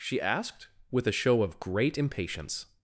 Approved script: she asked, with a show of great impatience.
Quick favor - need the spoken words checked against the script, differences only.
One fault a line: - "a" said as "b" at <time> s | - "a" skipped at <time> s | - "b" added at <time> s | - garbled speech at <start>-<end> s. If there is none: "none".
none